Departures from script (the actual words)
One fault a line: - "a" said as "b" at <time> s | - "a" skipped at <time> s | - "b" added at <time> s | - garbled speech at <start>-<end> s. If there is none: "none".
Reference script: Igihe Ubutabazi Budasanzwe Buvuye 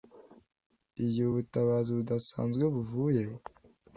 none